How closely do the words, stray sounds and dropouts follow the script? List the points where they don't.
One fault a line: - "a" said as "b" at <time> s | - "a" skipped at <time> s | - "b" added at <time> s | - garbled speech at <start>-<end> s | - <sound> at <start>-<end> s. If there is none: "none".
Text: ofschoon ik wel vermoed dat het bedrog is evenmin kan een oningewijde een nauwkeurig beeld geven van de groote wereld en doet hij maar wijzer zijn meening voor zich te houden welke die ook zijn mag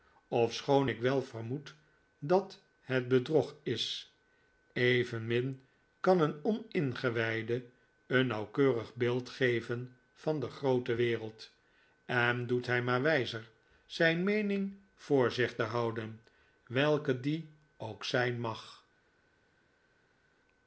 none